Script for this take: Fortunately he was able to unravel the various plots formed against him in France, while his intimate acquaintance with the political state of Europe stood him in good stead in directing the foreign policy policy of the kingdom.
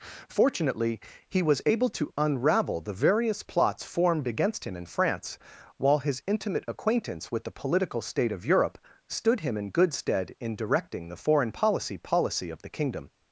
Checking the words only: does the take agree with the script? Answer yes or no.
yes